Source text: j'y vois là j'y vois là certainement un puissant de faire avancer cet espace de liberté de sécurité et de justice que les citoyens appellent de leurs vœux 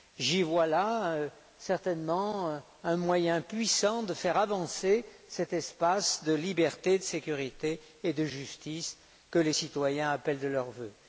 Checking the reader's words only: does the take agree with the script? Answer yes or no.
no